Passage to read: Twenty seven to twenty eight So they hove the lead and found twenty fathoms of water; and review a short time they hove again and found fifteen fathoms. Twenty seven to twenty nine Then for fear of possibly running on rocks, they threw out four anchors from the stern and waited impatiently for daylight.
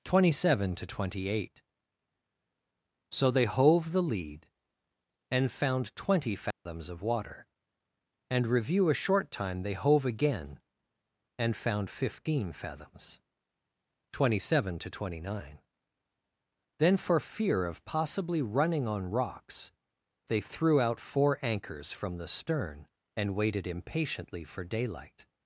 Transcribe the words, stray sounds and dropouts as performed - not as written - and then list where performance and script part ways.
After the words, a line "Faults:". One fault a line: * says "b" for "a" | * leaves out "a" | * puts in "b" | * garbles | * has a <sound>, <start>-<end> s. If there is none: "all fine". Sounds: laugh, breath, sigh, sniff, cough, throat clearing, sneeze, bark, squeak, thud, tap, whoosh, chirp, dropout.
Twenty seven to twenty eight So they hove the lead and found twenty fathoms of water; and review a short time they hove again and found fifteen fathoms. Twenty seven to twenty nine Then for fear of possibly running on rocks, they threw out four anchors from the stern and waited impatiently for daylight.
Faults:
* has a dropout, 6.5-6.7 s